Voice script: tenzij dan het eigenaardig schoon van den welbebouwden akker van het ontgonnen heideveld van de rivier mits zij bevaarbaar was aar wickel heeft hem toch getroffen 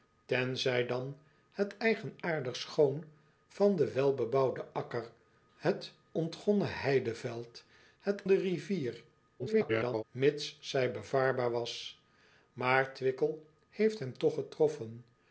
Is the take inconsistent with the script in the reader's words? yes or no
yes